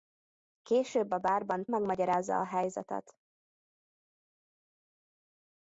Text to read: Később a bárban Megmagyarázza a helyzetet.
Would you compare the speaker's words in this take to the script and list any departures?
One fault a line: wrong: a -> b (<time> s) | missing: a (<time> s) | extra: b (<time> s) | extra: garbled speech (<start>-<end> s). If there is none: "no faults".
no faults